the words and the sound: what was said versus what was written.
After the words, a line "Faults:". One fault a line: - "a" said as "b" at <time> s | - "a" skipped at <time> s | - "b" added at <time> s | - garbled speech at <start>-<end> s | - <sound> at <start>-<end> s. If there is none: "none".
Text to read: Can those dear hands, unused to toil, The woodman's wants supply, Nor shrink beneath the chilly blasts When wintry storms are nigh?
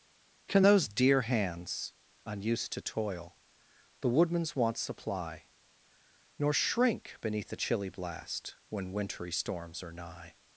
Can those dear hands, unused to toil, The woodman's wants supply, Nor shrink beneath the chilly blast When wintry storms are nigh?
Faults:
- "blasts" said as "blast" at 7.9 s